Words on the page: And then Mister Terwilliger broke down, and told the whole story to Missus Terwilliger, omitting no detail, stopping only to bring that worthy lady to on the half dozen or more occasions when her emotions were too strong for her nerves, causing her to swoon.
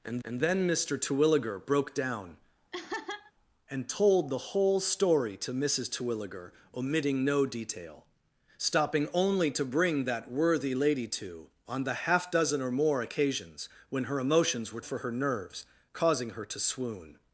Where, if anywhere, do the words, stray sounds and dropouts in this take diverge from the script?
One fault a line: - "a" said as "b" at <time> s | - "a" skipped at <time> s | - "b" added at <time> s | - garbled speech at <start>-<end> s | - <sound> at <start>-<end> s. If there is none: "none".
- "and" added at 0.2 s
- laugh at 2.7-3.3 s
- "too strong" skipped at 14.8 s